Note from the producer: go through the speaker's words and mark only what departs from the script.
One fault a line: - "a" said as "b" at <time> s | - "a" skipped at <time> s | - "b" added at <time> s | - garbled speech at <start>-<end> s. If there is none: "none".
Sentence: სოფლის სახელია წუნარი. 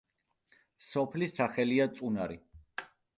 none